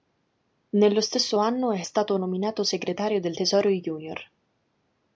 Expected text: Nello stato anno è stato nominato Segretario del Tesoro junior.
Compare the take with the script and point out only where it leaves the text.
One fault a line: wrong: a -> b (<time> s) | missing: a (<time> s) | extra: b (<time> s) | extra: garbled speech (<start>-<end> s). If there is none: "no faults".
wrong: stato -> stesso (1.0 s)